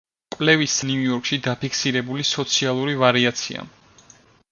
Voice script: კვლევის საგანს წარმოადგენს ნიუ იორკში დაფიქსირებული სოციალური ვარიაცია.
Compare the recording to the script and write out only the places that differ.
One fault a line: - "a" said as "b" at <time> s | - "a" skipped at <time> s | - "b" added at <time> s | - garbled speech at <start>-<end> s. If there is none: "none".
- "საგანს წარმოადგენს" skipped at 0.8 s